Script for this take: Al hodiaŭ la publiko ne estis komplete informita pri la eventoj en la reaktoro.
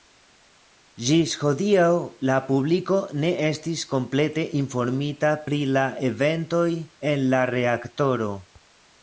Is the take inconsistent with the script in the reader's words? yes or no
yes